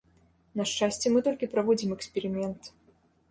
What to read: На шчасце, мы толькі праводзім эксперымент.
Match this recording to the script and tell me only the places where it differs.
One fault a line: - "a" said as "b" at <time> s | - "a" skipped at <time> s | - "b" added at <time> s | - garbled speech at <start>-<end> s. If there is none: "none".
none